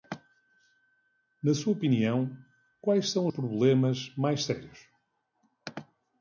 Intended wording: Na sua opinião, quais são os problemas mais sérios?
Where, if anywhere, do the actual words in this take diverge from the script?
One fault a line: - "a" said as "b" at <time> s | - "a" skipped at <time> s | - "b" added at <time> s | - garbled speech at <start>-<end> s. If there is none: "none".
- "os" skipped at 3.3 s